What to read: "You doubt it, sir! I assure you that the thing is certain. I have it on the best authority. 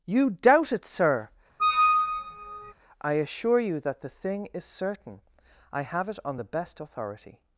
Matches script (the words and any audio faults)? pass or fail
fail